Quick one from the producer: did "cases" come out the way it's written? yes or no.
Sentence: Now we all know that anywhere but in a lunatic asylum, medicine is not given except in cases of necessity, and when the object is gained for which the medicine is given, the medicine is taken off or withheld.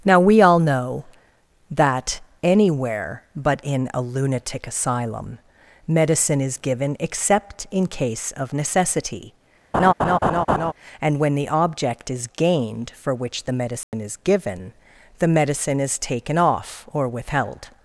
no